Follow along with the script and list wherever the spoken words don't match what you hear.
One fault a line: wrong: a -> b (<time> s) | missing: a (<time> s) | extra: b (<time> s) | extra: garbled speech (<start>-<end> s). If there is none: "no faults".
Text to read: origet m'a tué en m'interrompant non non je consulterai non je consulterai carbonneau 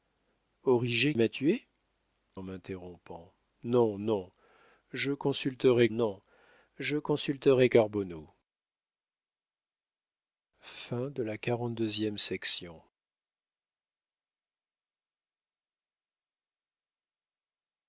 no faults